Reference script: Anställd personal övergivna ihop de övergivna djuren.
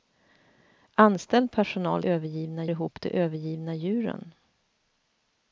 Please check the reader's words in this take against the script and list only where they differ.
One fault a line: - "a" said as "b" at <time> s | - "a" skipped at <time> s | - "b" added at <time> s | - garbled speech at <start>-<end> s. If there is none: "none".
none